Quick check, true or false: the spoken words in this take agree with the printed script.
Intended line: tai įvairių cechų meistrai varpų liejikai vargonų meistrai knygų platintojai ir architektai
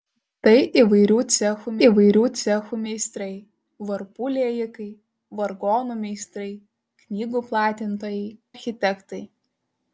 false